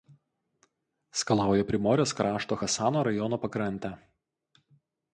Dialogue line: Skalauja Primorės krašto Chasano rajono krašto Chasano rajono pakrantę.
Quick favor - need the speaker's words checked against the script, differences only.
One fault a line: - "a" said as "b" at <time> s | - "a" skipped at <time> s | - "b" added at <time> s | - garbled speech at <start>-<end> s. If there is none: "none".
- "krašto Chasano rajono" skipped at 3.4 s